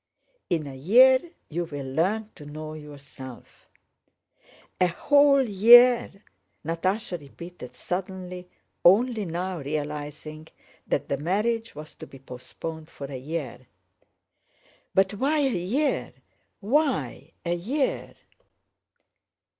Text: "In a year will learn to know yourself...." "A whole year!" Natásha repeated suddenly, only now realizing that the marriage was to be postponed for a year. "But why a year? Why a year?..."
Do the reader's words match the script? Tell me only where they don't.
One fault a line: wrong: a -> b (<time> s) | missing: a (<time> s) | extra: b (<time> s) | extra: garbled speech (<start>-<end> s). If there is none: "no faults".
extra: you (1.5 s)